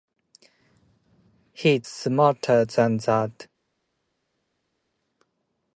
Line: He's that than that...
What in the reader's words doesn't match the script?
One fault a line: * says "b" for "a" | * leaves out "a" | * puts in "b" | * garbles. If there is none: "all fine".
* says "smarter" for "that"